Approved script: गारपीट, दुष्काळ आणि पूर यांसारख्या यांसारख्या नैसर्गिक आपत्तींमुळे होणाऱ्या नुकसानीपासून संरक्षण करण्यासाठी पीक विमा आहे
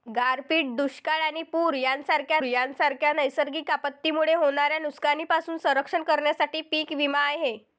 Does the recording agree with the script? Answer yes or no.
yes